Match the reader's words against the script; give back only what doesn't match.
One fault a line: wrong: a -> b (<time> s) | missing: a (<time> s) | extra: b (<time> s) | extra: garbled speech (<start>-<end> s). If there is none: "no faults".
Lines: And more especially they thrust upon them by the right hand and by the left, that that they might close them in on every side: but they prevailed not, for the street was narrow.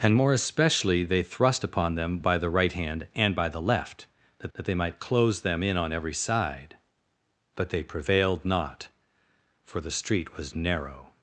no faults